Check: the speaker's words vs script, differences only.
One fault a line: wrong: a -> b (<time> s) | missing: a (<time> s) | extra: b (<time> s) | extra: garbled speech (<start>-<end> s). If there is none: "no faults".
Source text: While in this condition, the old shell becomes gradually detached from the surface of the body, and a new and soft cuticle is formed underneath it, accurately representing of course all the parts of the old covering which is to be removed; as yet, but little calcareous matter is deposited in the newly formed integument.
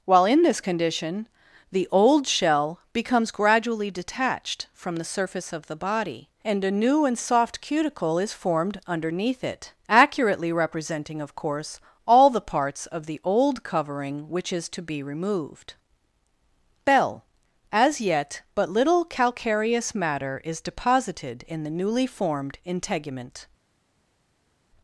extra: bell (16.9 s)